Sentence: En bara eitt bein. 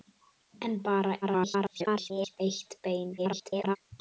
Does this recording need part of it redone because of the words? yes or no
yes